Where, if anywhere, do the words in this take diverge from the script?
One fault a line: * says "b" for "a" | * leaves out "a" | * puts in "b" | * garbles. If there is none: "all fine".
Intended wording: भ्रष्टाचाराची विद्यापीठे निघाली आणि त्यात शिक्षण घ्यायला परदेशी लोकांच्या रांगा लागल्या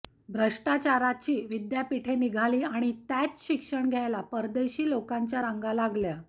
all fine